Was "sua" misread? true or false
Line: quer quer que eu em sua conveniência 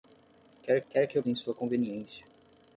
false